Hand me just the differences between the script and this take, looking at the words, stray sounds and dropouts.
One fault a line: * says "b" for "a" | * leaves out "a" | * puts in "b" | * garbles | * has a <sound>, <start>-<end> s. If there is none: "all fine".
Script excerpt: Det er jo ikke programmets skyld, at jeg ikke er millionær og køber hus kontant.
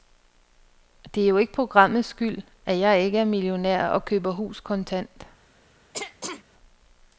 * has a throat clearing, 5.9-6.4 s